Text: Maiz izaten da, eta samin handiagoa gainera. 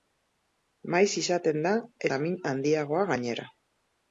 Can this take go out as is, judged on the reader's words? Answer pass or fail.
fail